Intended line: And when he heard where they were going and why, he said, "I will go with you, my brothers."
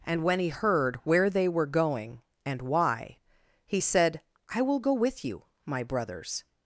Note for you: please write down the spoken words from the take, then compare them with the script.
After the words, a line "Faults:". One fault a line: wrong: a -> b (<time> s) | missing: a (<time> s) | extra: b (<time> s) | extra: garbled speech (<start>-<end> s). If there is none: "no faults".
And when he heard where they were going and why, he said, "I will go with you, my brothers."
Faults:
no faults